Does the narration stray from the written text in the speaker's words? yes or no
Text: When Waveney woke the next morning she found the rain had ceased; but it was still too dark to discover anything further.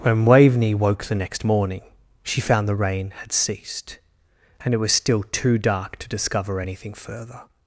yes